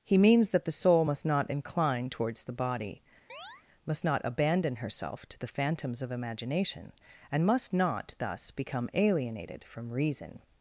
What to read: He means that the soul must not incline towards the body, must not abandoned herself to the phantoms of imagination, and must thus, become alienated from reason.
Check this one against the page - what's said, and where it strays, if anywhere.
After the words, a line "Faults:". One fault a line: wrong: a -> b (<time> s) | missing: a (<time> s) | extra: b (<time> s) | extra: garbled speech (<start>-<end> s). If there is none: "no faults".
He means that the soul must not incline towards the body, must not abandon herself to the phantoms of imagination, and must not, thus, become alienated from reason.
Faults:
wrong: abandoned -> abandon (4.2 s)
extra: not (7.7 s)